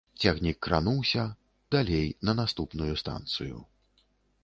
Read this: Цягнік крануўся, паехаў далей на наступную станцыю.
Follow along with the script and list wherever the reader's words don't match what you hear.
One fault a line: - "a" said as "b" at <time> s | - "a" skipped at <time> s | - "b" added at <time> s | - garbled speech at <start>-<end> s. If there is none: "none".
- "паехаў" skipped at 1.2 s